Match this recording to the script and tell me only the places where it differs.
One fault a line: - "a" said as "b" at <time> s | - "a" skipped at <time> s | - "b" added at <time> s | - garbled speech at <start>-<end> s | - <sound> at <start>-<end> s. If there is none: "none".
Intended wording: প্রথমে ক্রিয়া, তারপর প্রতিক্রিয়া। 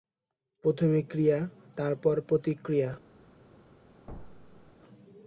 - thud at 4.1-4.7 s